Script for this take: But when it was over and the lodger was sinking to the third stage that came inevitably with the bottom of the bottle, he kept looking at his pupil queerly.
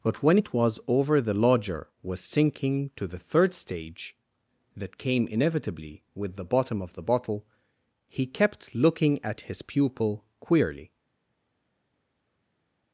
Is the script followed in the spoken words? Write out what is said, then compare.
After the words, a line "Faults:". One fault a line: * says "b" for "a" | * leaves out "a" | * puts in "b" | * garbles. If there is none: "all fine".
But when it was over the lodger was sinking to the third stage that came inevitably with the bottom of the bottle, he kept looking at his pupil queerly.
Faults:
* leaves out "and"